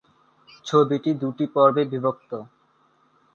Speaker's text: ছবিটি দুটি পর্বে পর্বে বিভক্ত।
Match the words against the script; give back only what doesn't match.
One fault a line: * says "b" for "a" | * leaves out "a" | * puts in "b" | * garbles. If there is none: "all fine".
* leaves out "পর্বে"